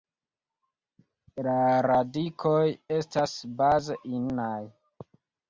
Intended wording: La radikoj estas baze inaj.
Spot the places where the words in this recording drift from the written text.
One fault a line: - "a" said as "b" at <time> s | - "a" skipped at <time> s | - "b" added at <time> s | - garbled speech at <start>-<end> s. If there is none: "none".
none